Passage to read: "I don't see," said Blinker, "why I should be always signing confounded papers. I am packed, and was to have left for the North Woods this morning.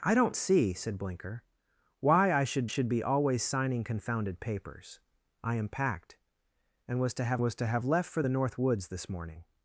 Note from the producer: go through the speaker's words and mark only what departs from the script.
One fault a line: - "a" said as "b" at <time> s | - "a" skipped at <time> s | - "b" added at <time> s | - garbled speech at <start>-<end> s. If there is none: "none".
- "should" added at 2.6 s
- "was to have" added at 7.4 s